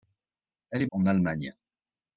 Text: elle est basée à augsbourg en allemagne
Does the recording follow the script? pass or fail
fail